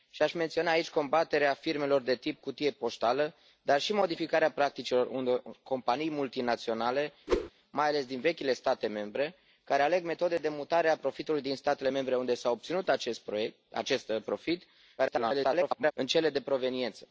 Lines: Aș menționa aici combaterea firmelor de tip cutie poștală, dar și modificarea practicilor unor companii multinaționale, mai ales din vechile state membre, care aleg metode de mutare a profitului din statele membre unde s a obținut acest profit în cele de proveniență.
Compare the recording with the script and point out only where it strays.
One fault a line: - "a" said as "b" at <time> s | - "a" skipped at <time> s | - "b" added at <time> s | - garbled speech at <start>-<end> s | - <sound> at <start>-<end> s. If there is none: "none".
- whoosh at 7.3-7.5 s
- garbled speech at 15.0-15.9 s